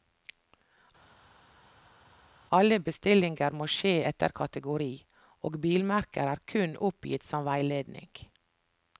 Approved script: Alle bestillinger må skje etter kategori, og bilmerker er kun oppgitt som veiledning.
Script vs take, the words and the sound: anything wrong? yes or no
no